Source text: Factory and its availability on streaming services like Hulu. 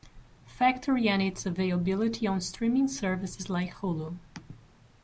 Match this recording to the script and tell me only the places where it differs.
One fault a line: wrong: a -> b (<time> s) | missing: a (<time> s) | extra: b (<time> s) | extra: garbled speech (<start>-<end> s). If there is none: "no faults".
no faults